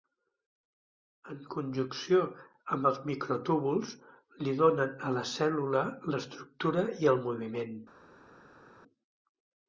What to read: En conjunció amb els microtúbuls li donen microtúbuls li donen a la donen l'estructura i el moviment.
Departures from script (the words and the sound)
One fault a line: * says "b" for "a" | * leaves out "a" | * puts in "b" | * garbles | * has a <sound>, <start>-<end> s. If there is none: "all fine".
* leaves out "microtúbuls li donen"
* says "cèl·lula" for "donen"